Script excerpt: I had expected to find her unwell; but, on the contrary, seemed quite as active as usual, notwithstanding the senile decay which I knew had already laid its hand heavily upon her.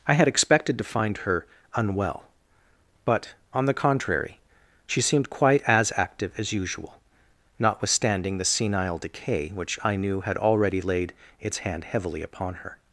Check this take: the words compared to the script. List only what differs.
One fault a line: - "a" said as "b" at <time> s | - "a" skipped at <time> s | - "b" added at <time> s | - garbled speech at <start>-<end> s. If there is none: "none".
- "she" added at 4.9 s